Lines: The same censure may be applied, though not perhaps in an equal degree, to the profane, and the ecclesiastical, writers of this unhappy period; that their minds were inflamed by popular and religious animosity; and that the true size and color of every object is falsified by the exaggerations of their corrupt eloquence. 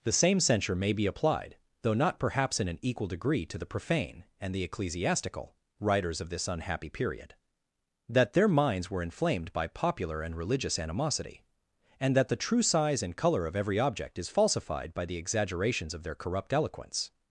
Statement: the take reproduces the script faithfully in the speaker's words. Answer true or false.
true